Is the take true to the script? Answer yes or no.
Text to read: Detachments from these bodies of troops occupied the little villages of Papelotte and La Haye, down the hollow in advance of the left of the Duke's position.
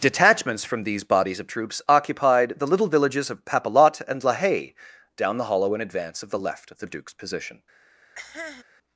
yes